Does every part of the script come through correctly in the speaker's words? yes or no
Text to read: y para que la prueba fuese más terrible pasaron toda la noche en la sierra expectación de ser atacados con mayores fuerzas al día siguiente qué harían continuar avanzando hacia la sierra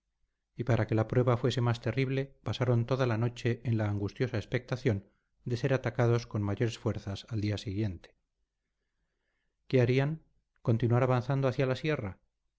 no